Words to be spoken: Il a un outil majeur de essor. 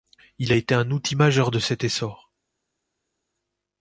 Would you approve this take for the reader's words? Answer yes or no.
no